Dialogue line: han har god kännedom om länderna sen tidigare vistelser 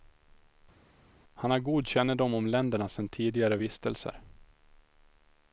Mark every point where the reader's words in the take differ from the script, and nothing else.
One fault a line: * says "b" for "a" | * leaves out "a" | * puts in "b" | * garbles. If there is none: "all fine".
all fine